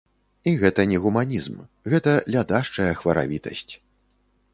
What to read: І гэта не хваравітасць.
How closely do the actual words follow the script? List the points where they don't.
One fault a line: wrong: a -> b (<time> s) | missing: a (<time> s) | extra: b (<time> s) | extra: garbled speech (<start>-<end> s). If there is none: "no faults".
extra: гуманізм гэта лядашчая (1.0 s)